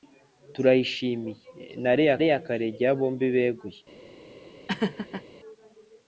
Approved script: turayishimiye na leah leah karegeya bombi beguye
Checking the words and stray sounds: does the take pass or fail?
fail